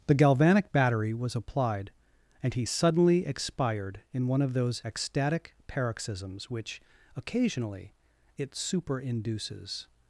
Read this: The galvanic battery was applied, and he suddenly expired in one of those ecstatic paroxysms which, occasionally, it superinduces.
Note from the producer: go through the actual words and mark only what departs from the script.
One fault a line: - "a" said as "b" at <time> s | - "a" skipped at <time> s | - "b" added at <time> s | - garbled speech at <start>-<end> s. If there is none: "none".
none